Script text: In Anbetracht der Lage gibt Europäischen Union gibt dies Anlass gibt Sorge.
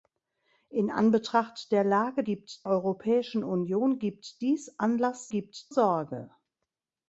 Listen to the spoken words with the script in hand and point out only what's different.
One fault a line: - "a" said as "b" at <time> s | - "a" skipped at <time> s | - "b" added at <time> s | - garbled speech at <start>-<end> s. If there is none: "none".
none